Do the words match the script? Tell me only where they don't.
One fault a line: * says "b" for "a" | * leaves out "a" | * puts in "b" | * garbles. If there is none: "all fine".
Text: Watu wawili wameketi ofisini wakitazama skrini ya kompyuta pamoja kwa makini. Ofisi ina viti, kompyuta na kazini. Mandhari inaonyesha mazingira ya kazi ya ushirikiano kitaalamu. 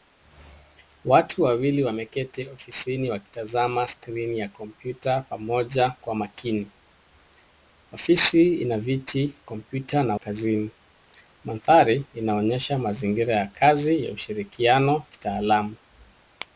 all fine